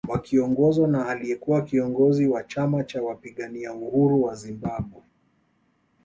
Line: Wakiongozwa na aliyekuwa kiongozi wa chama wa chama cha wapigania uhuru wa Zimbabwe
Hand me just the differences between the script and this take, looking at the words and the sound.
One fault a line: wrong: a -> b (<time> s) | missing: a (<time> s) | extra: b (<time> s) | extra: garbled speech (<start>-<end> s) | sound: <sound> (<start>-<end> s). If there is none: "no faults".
missing: wa chama (2.8 s)